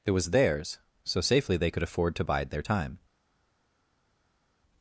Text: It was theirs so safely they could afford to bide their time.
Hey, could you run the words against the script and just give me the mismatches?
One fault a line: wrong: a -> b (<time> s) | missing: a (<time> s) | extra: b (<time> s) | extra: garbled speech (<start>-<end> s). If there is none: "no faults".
no faults